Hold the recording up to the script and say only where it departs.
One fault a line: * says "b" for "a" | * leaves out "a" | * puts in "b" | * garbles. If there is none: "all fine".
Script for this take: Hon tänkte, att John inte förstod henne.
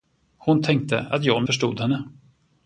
* leaves out "inte"